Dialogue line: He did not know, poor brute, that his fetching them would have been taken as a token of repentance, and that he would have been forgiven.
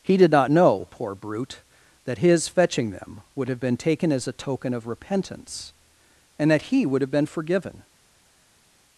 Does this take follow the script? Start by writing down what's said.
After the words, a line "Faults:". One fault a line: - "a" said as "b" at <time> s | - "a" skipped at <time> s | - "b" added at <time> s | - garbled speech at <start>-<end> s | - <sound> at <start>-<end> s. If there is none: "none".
He did not know, poor brute, that his fetching them would have been taken as a token of repentance, and that he would have been forgiven.
Faults:
none